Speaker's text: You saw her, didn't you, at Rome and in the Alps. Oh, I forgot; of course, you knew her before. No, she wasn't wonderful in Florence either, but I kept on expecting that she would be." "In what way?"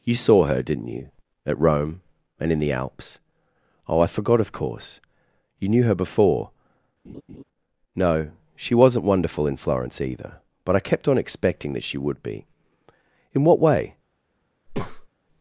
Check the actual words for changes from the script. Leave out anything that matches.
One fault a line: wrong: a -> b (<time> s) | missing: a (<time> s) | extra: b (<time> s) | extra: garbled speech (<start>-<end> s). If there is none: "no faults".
no faults